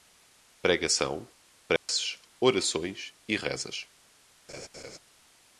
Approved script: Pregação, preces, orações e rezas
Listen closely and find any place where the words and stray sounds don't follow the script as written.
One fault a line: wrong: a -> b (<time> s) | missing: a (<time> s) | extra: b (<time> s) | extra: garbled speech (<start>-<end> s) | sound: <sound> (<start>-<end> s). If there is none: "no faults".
sound: dropout (1.8-1.9 s)
sound: laugh (4.5-5.0 s)